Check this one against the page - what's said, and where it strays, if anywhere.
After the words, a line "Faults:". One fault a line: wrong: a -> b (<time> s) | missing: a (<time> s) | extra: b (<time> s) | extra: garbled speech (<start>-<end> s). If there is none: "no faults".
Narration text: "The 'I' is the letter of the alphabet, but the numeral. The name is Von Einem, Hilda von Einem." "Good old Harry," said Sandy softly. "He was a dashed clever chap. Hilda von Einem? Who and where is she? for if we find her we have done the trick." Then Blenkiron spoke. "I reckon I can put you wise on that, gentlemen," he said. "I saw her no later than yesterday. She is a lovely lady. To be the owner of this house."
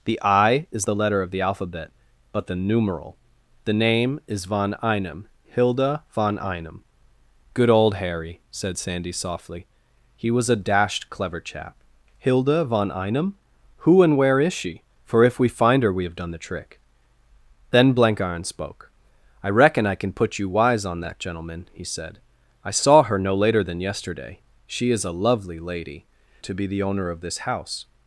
"The 'I' is the letter of the alphabet, but the numeral. The name is Von Einem, Hilda von Einem." "Good old Harry," said Sandy softly. "He was a dashed clever chap. Hilda von Einem? Who and where is she? for if we find her we have done the trick." Then Blenkiron spoke. "I reckon I can put you wise on that, gentlemen," he said. "I saw her no later than yesterday. She is a lovely lady. To be the owner of this house."
Faults:
no faults